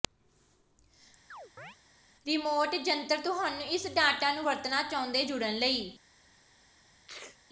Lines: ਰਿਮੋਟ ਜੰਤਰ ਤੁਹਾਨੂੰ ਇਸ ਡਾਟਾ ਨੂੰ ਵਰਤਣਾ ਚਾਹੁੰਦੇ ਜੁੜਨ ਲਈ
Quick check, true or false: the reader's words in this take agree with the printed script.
true